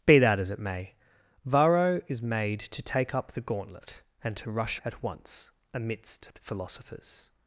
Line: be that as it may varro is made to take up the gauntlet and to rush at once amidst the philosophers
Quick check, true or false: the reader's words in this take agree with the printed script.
true